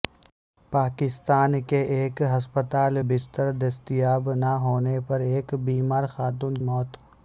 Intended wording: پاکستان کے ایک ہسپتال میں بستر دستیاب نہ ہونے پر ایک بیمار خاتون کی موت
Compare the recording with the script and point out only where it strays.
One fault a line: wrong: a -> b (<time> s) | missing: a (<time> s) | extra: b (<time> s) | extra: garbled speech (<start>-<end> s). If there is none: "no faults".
missing: میں (3.0 s)
missing: کی (6.6 s)